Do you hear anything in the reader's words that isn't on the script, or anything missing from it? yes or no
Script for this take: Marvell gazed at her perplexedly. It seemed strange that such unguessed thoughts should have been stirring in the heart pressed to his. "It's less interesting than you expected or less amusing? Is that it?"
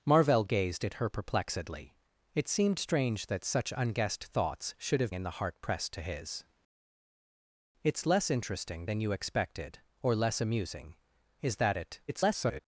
yes